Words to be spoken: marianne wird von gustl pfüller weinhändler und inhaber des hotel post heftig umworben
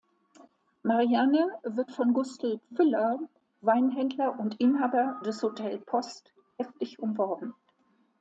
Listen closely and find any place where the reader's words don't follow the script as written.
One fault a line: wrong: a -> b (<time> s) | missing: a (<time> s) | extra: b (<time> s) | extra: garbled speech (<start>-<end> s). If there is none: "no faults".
no faults